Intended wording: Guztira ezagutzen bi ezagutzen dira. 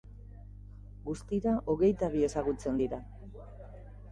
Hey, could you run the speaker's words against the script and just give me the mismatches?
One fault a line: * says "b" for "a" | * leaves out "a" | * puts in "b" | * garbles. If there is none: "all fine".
* says "hogeita" for "ezagutzen"